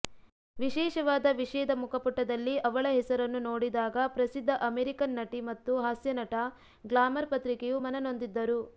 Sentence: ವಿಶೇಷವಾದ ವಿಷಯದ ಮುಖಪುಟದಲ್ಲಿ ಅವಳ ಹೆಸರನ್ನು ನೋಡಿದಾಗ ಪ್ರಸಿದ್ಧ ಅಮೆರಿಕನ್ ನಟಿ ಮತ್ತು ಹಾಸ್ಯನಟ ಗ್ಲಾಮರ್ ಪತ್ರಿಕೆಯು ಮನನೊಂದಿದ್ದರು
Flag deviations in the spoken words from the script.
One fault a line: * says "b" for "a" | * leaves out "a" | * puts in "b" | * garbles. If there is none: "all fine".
all fine